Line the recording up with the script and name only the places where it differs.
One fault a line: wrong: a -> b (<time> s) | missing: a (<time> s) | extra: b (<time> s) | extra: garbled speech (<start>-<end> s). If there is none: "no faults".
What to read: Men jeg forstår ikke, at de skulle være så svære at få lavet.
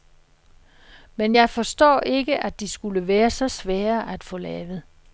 no faults